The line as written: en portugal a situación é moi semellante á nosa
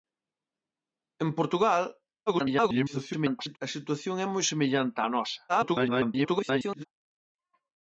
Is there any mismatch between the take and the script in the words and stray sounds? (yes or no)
yes